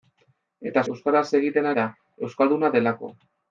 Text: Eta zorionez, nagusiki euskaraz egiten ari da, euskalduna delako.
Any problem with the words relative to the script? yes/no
yes